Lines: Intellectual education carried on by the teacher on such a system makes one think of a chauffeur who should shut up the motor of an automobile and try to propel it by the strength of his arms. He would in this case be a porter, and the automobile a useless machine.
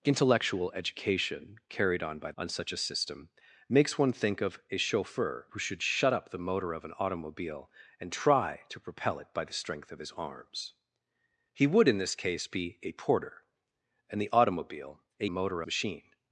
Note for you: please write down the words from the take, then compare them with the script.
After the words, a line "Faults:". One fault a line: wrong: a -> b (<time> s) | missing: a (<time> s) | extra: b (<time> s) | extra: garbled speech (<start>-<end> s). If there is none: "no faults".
Intellectual education carried on by on such a system makes one think of a chauffeur who should shut up the motor of an automobile and try to propel it by the strength of his arms. He would in this case be a porter, and the automobile a motor machine.
Faults:
missing: the teacher (2.3 s)
wrong: useless -> motor (15.3 s)